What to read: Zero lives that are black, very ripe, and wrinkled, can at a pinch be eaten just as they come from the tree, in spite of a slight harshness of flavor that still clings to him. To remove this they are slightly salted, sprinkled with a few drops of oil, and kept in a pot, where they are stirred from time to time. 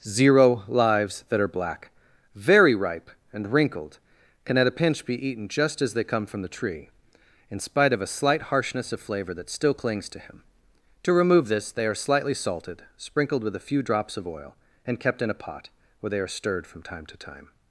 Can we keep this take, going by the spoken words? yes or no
yes